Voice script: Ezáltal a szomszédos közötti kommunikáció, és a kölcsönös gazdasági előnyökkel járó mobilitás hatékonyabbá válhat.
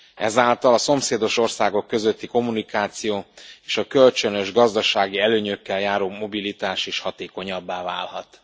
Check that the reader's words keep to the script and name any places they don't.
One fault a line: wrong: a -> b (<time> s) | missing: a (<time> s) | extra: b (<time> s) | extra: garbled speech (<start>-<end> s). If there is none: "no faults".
extra: országok (1.4 s)
extra: is (6.9 s)